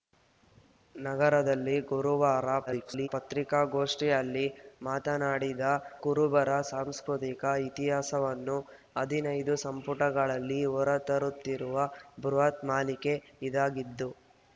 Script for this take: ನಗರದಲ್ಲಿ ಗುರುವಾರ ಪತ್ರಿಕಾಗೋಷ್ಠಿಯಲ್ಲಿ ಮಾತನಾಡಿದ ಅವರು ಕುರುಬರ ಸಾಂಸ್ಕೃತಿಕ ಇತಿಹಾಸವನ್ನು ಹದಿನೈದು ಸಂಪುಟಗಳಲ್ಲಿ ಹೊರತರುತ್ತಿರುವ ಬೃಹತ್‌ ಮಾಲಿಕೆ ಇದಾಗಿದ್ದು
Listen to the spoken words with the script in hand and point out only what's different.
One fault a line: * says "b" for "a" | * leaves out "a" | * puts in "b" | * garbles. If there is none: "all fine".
* garbles
* leaves out "ಅವರು"